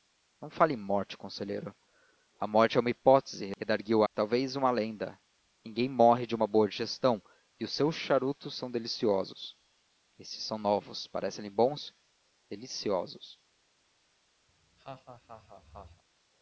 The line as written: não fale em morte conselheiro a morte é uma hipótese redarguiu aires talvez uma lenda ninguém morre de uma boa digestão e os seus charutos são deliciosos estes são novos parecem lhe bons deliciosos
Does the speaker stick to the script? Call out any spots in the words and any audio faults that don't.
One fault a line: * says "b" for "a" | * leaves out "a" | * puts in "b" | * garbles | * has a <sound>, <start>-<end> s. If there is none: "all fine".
* leaves out "aires"
* has a laugh, 14.5-16.0 s